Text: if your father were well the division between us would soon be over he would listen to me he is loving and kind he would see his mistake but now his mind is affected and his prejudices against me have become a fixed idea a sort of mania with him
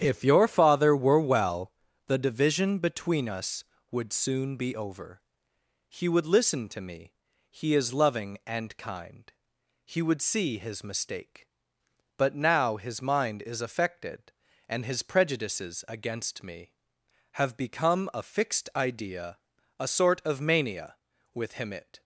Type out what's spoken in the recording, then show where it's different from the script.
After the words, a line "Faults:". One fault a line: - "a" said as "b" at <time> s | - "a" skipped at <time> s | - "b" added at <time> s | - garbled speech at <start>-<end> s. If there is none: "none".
if your father were well the division between us would soon be over he would listen to me he is loving and kind he would see his mistake but now his mind is affected and his prejudices against me have become a fixed idea a sort of mania with him it
Faults:
- "it" added at 21.7 s